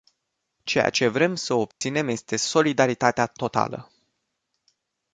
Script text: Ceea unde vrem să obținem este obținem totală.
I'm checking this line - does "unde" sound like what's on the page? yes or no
no